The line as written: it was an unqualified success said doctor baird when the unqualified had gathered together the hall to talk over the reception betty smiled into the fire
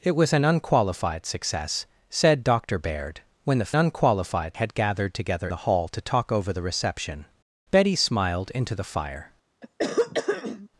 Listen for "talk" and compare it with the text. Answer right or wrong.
right